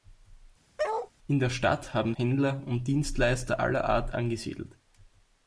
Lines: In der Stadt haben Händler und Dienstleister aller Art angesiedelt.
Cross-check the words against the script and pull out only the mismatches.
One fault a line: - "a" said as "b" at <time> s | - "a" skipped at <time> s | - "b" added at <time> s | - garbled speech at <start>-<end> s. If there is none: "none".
none